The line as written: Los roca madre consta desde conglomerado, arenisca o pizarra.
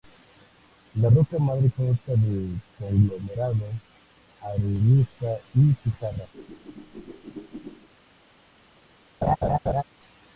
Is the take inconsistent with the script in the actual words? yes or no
yes